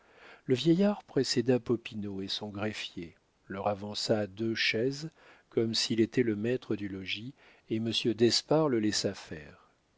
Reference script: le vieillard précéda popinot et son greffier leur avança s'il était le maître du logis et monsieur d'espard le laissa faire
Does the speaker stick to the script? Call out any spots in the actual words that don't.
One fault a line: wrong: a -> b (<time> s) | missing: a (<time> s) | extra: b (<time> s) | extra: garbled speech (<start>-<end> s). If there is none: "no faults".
extra: deux chaises comme (4.3 s)